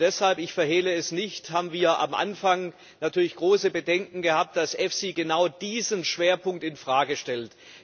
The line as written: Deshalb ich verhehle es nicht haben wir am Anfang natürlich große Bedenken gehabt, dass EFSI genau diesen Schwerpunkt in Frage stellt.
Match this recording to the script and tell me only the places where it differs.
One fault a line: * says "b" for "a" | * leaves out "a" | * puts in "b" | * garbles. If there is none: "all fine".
all fine